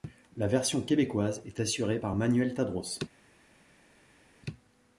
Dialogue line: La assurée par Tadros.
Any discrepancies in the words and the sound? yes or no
yes